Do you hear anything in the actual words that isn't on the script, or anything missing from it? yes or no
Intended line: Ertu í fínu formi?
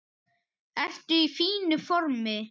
no